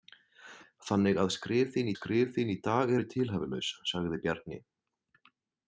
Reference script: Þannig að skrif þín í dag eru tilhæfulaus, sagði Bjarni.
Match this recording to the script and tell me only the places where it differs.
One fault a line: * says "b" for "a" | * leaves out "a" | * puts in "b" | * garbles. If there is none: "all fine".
* puts in "skrif þín"